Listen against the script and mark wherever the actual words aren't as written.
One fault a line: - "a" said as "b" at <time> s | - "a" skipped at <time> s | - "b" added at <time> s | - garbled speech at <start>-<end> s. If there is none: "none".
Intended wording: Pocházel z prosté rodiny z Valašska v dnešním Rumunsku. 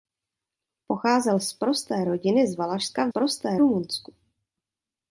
- "dnešním" said as "prosté" at 3.1 s